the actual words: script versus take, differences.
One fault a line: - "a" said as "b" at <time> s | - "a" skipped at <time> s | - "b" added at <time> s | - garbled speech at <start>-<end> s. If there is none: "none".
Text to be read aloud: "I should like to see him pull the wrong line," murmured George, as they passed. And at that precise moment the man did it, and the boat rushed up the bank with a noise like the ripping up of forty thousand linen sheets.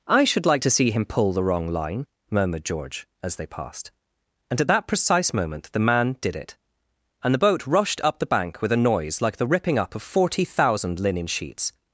none